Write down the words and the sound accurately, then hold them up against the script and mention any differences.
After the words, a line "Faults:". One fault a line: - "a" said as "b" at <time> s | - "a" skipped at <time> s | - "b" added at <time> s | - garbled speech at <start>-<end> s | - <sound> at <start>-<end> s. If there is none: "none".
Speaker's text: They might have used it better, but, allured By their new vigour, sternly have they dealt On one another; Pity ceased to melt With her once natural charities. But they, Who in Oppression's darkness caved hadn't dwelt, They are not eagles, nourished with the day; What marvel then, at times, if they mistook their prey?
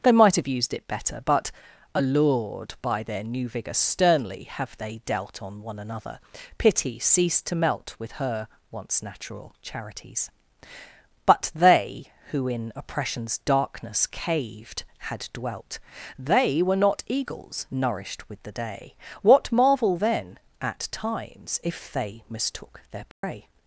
They might have used it better, but, allured By their new vigour, sternly have they dealt On one another; Pity ceased to melt With her once natural charities. But they, Who in Oppression's darkness caved had dwelt, They were not eagles, nourished with the day; What marvel then, at times, if they mistook their prey?
Faults:
- "hadn't" said as "had" at 15.0 s
- "are" said as "were" at 16.6 s
- dropout at 23.1-23.2 s